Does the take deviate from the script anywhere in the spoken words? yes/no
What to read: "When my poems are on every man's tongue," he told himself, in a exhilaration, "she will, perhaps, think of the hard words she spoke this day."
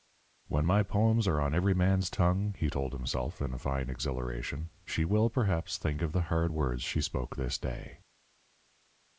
yes